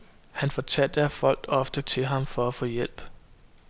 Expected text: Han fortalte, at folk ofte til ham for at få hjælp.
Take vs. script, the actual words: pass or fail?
pass